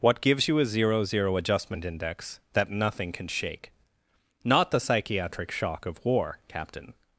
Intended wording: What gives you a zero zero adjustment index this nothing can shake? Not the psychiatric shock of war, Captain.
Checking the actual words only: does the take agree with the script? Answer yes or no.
no